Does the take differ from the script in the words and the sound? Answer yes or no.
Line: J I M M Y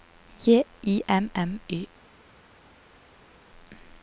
no